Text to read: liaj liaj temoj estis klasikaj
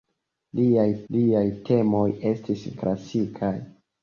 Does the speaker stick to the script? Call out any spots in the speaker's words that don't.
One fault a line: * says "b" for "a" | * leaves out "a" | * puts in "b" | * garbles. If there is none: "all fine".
all fine